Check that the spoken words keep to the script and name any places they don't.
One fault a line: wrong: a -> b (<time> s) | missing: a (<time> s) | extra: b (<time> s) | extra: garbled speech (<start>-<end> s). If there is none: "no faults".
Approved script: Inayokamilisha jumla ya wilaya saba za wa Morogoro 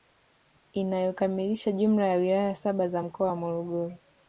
extra: mkoa (3.0 s)